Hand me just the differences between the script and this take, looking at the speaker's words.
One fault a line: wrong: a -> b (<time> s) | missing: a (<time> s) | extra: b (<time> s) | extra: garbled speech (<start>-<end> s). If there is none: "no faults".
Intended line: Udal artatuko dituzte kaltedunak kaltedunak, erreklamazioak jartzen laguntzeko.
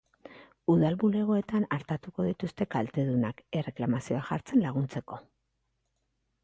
extra: bulegoetan (1.0 s)
missing: kaltedunak (3.4 s)